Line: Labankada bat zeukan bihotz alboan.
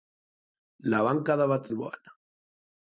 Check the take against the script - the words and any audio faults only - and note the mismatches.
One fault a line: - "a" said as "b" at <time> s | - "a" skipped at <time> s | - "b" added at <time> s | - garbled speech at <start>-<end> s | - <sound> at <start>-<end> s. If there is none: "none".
- "zeukan bihotz" skipped at 1.7 s